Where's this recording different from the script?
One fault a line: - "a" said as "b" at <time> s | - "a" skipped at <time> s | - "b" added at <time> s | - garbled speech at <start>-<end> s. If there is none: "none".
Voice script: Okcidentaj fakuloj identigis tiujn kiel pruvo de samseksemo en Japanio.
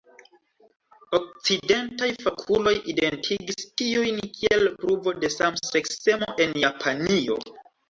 none